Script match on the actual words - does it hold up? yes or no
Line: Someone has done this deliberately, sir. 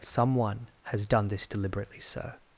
yes